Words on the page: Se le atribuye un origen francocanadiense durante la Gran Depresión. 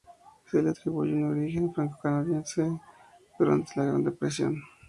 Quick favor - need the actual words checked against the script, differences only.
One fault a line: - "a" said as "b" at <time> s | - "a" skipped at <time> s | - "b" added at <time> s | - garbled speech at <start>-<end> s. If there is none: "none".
none